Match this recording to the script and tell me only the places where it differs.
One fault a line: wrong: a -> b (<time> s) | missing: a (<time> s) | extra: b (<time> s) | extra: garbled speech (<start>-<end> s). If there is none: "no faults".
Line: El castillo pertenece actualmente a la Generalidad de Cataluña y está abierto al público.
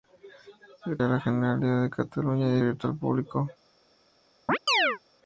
missing: castillo pertenece actualmente (1.0 s)
missing: está (2.6 s)